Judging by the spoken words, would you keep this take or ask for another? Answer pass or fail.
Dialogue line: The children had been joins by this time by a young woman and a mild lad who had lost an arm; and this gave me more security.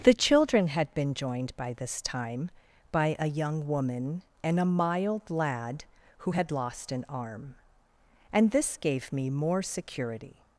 fail